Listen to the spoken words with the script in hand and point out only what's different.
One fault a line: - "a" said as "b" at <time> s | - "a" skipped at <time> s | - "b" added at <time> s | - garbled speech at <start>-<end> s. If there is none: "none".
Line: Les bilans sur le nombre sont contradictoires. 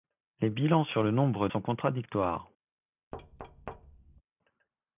none